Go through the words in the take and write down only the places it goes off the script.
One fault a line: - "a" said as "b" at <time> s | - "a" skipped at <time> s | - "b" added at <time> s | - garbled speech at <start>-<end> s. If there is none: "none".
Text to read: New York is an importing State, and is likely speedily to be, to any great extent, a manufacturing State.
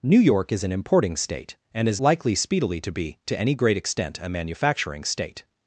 none